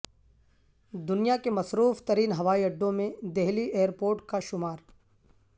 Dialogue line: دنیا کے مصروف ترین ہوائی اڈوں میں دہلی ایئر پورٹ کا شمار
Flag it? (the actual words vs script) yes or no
no